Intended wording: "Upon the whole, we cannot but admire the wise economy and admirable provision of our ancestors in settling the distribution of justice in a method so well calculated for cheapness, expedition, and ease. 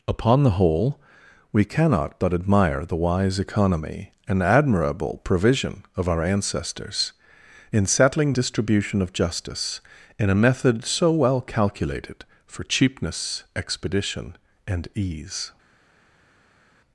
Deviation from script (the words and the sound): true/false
true